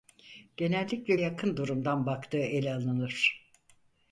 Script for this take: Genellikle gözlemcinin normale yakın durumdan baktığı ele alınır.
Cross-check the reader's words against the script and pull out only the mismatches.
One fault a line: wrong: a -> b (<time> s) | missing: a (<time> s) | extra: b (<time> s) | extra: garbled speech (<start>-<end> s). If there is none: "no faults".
missing: gözlemcinin normale (1.1 s)